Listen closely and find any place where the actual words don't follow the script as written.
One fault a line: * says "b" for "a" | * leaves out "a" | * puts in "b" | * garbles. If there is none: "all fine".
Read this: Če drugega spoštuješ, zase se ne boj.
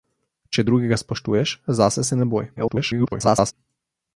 * garbles